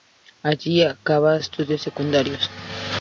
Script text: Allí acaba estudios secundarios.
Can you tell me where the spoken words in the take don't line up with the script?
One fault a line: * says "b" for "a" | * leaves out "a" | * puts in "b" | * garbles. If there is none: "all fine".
all fine